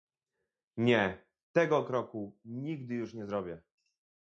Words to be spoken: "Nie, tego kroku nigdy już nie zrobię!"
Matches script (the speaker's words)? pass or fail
pass